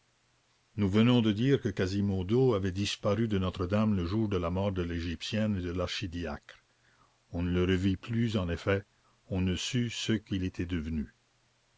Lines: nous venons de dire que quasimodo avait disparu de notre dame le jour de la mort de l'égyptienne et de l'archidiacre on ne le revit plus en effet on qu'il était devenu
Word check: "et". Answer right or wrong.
right